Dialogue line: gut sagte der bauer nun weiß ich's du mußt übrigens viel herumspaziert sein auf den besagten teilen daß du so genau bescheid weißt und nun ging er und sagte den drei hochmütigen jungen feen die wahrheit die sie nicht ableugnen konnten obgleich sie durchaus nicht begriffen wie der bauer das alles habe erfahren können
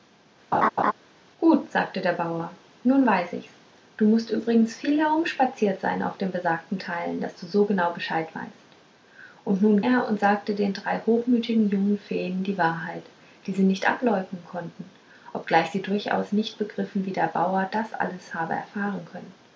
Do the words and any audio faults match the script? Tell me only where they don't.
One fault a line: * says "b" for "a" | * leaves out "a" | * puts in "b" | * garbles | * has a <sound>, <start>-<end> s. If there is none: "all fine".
* has a laugh, 0.5-0.9 s
* leaves out "ging"